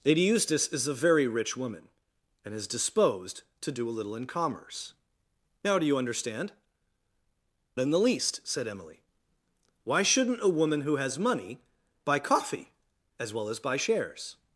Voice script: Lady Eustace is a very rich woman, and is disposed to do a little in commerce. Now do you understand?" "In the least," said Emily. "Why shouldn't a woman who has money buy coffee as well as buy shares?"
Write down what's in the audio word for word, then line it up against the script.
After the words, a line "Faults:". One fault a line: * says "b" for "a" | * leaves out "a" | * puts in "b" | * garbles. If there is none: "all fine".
Lady Eustace is a very rich woman, and is disposed to do a little in commerce. Now do you understand?" "In the least," said Emily. "Why shouldn't a woman who has money buy coffee as well as buy shares?"
Faults:
all fine